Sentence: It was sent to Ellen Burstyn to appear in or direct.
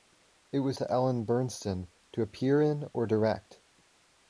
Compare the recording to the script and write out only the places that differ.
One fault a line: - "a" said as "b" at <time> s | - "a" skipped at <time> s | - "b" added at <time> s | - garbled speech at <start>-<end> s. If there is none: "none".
- "sent" skipped at 0.8 s